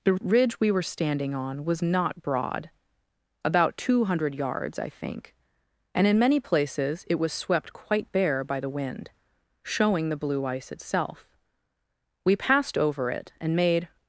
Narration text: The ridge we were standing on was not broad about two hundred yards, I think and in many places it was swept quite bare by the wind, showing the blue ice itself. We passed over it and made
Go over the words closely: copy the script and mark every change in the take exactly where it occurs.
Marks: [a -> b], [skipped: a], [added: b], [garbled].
The ridge we were standing on was not broad about two hundred yards, I think and in many places it was swept quite bare by the wind, showing the blue ice itself. We passed over it and made